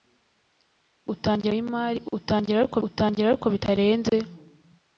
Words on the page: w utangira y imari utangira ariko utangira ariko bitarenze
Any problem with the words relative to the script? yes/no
no